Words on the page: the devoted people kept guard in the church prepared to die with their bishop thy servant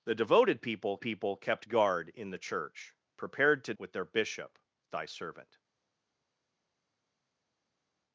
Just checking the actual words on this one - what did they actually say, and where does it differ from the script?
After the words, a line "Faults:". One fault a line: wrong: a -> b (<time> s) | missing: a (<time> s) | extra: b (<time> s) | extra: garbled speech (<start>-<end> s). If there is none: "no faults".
the devoted people people kept guard in the church prepared to with their bishop thy servant
Faults:
extra: people (1.0 s)
missing: die (3.7 s)